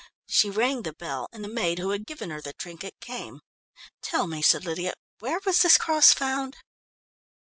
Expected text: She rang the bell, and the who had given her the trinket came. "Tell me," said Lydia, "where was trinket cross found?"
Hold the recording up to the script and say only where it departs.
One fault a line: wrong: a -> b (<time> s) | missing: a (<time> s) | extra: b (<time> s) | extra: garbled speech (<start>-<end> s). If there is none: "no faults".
extra: maid (1.5 s)
wrong: trinket -> this (5.6 s)